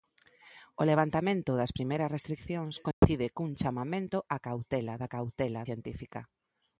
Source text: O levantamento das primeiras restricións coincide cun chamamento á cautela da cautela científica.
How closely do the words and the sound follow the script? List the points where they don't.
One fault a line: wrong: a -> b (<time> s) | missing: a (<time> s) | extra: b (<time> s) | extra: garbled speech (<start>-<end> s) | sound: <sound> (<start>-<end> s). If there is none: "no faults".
sound: dropout (2.9-3.0 s)